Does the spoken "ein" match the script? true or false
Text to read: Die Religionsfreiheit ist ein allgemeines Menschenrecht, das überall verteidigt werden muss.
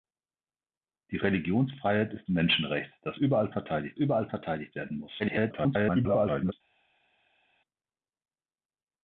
false